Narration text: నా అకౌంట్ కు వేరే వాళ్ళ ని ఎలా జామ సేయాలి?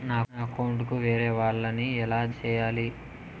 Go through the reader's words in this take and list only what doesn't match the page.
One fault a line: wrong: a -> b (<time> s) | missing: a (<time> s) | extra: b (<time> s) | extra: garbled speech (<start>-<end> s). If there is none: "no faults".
missing: జామ (2.2 s)